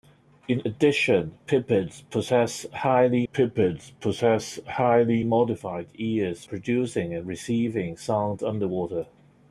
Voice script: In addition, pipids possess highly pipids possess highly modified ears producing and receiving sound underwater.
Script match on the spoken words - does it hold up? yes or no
yes